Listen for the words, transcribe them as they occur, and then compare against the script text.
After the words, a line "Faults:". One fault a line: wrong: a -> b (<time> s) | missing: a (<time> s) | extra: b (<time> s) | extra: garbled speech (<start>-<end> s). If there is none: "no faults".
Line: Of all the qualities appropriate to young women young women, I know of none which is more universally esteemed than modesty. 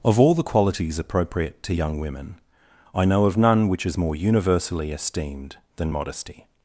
Of all the qualities appropriate to young women, I know of none which is more universally esteemed than modesty.
Faults:
missing: young women (2.4 s)